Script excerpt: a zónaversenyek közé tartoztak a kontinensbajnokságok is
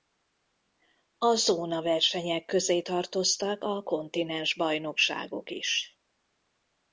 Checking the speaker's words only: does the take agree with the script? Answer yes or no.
yes